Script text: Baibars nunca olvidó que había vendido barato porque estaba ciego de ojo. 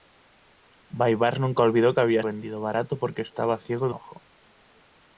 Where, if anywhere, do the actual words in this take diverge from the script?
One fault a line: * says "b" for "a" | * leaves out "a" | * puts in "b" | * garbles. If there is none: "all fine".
all fine